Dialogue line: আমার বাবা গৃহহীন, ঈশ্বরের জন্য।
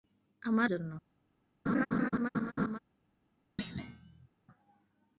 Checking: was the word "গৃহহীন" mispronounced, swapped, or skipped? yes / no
yes